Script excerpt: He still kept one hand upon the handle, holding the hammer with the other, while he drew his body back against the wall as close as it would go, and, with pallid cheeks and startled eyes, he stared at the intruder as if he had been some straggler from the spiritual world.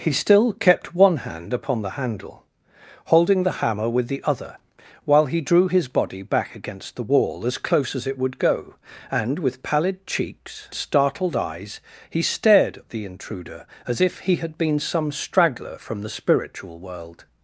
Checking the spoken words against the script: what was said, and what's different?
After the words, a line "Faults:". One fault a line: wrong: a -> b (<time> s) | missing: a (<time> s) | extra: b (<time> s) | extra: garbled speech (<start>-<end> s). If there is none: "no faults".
He still kept one hand upon the handle, holding the hammer with the other, while he drew his body back against the wall as close as it would go, and, with pallid cheeks startled eyes, he stared at the intruder as if he had been some straggler from the spiritual world.
Faults:
missing: and (10.7 s)